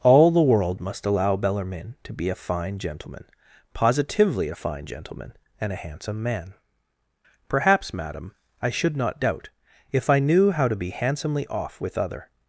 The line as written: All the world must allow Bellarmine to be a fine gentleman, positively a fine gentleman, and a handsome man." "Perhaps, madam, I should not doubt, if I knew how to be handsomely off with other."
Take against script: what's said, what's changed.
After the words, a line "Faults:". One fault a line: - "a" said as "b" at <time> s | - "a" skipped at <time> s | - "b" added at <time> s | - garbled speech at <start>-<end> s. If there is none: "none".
All the world must allow Bellarmine to be a fine gentleman, positively a fine gentleman, and a handsome man." "Perhaps, madam, I should not doubt, if I knew how to be handsomely off with other."
Faults:
none